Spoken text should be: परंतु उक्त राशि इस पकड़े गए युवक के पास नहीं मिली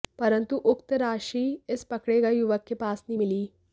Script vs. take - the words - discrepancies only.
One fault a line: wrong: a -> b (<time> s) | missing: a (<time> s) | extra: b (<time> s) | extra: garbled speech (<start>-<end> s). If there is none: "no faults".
no faults